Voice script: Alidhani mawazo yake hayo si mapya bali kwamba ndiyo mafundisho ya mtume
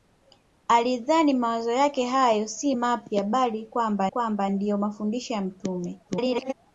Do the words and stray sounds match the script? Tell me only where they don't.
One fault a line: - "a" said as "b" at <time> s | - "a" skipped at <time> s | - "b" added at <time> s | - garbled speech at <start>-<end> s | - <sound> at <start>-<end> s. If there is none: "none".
- "kwamba" added at 4.1 s
- garbled speech at 6.1-6.5 s